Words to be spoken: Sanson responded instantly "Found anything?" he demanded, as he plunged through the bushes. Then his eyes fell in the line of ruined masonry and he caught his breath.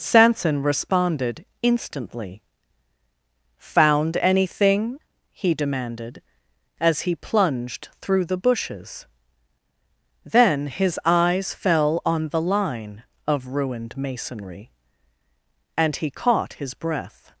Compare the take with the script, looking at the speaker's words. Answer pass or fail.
fail